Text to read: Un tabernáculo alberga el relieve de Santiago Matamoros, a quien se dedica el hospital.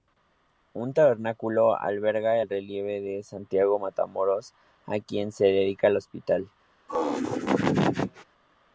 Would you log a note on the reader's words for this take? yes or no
no